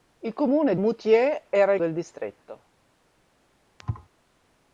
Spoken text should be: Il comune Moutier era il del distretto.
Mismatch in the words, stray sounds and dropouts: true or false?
true